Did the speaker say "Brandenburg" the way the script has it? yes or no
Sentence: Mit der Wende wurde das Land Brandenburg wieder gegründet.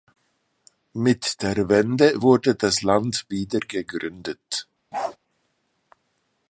no